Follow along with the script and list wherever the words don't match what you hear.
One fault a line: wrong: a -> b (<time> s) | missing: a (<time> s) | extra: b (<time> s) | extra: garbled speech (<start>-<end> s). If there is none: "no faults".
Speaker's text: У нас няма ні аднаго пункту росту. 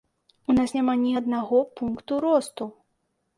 no faults